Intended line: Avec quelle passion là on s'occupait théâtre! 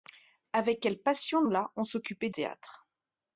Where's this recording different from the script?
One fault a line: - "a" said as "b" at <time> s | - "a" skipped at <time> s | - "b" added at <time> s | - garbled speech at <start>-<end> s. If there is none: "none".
none